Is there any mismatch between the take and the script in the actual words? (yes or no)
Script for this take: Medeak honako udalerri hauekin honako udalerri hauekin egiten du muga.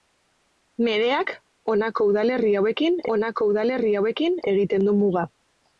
no